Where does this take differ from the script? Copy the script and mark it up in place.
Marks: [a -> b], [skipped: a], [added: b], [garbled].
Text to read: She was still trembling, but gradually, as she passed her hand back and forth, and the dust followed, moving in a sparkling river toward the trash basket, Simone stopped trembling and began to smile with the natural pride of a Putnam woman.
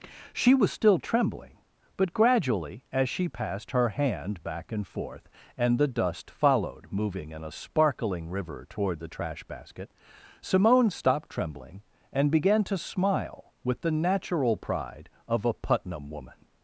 She was still trembling, but gradually, as she passed her hand back and forth, and the dust followed, moving in a sparkling river toward the trash basket, Simone stopped trembling and began to smile with the natural pride of a Putnam woman.